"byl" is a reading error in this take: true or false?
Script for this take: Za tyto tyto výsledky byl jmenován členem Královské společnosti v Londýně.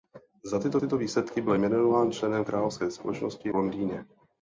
false